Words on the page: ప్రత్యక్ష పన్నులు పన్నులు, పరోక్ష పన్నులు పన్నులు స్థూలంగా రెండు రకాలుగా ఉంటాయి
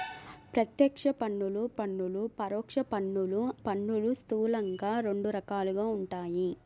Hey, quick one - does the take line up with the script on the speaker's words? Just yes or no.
yes